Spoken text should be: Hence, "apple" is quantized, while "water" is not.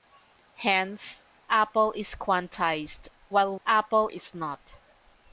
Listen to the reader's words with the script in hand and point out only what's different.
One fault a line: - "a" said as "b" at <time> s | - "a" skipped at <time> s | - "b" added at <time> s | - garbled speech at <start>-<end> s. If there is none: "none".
- "water" said as "apple" at 3.6 s